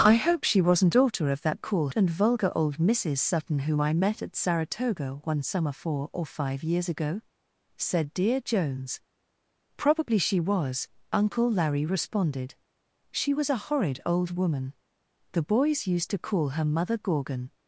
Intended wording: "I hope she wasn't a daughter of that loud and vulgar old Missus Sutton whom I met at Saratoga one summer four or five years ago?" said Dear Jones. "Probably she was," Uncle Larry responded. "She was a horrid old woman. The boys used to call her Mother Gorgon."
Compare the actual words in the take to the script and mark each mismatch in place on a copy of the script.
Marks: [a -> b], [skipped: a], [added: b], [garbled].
"I hope she wasn't [skipped: a] daughter of that [loud -> call] and vulgar old Missus Sutton whom I met at Saratoga one summer four or five years ago?" said Dear Jones. "Probably she was," Uncle Larry responded. "She was a horrid old woman. The boys used to call her Mother Gorgon."